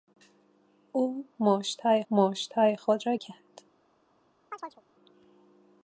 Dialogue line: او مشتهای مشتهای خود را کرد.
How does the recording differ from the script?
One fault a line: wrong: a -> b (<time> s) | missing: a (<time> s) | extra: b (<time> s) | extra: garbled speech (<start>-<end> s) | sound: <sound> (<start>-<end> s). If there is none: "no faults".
sound: chirp (4.5-4.8 s)